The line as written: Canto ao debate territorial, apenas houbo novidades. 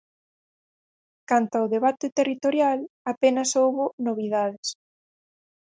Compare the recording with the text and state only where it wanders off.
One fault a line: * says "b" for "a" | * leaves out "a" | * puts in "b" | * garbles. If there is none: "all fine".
all fine